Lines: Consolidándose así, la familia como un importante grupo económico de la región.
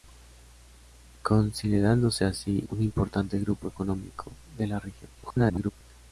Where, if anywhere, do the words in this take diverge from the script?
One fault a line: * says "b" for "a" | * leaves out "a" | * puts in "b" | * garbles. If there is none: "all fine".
* leaves out "la familia como"
* garbles